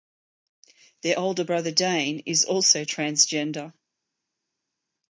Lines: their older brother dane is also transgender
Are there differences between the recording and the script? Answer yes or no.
no